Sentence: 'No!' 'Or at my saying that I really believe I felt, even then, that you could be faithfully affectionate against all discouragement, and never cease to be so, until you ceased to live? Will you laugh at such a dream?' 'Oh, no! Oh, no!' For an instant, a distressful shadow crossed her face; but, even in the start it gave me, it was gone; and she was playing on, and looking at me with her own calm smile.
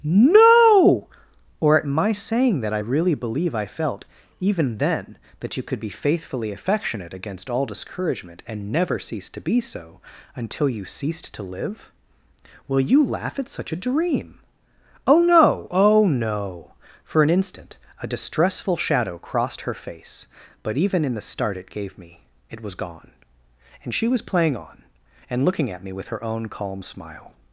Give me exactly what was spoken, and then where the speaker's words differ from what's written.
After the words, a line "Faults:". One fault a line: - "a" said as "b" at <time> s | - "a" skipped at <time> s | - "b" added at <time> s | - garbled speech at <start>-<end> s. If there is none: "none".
'No!' 'Or at my saying that I really believe I felt, even then, that you could be faithfully affectionate against all discouragement, and never cease to be so, until you ceased to live? Will you laugh at such a dream?' 'Oh, no! Oh, no!' For an instant, a distressful shadow crossed her face; but, even in the start it gave me, it was gone; and she was playing on, and looking at me with her own calm smile.
Faults:
none